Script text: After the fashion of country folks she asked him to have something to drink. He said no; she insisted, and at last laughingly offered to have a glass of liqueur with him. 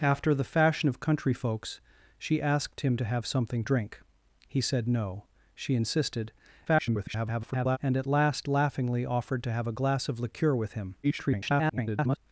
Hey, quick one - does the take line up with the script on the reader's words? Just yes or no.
no